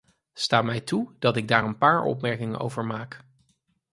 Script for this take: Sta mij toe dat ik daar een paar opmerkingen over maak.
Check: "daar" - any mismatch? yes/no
no